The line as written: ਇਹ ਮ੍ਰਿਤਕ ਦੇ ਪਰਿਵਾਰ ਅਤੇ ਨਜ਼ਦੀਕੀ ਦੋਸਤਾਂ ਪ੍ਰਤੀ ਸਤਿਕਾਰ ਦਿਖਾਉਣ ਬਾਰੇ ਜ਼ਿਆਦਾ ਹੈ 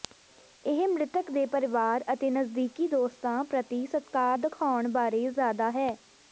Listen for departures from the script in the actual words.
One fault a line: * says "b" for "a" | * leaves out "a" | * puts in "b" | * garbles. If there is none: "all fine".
all fine